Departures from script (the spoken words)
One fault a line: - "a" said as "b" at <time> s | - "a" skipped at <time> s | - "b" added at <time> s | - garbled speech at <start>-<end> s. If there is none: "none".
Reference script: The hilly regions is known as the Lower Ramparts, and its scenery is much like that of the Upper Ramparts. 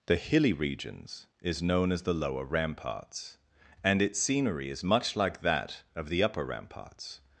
none